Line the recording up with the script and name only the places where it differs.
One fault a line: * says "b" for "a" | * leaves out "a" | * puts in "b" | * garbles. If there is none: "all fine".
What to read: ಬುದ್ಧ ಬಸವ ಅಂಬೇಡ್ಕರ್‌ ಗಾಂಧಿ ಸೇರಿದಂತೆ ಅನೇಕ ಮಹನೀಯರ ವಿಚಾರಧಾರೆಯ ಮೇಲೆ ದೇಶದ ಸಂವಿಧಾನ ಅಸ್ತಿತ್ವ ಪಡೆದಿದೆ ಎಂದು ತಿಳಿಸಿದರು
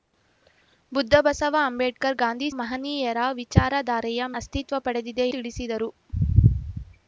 * leaves out "ಸೇರಿದಂತೆ ಅನೇಕ"
* leaves out "ಮೇಲೆ ದೇಶದ ಸಂವಿಧಾನ"
* leaves out "ಎಂದು"